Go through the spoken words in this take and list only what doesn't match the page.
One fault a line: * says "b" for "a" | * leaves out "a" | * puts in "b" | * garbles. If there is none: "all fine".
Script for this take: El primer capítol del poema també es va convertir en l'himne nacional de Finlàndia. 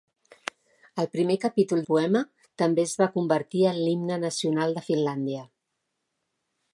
* leaves out "del"